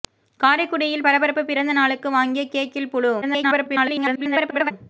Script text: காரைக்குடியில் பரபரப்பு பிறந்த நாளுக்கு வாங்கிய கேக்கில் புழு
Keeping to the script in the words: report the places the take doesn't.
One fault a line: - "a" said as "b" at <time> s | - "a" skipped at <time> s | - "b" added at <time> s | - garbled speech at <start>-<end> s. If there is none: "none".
- garbled speech at 3.2-4.7 s